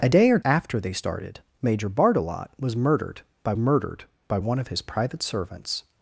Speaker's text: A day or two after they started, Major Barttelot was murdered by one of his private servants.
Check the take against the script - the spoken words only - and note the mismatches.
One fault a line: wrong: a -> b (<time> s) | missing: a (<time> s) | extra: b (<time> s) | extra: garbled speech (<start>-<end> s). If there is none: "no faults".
missing: two (0.4 s)
extra: murdered by (3.6 s)